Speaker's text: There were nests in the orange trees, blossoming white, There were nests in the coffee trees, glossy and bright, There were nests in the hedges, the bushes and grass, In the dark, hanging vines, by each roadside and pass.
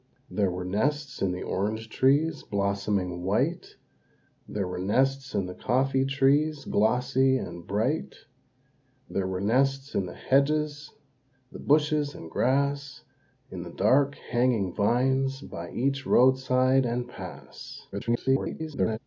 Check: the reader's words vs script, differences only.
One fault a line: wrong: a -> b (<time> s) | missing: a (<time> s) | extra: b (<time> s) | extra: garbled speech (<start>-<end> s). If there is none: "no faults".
extra: garbled speech (17.9-19.0 s)